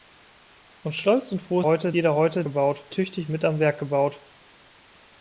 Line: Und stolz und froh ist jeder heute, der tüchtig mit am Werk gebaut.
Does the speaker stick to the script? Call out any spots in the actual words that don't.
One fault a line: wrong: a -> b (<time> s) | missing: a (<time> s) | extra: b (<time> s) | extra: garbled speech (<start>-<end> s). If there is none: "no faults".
wrong: ist -> heute (1.6 s)
wrong: der -> gebaut (2.4 s)